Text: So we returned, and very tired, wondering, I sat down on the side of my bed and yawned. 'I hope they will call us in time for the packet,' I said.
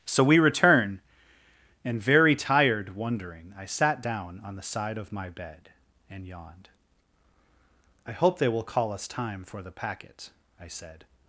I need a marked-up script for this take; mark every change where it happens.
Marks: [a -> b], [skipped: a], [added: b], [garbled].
So we [returned, -> return] and very tired, wondering, I sat down on the side of my bed and yawned. 'I hope they will call us [skipped: in] time for the packet,' I said.